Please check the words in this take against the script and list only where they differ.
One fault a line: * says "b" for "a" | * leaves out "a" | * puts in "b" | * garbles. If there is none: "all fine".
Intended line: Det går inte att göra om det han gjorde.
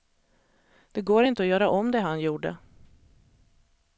all fine